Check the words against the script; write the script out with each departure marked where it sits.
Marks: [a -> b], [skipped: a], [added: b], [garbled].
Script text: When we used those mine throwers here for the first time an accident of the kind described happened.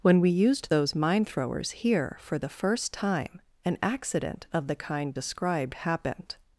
When we used those mine throwers here for the first time an accident of the kind described happened.